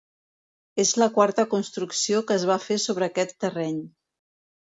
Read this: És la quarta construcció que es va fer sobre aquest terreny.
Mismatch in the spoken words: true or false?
false